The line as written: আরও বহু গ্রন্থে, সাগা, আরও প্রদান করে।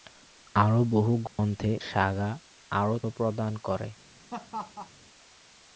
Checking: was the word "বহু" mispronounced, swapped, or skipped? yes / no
no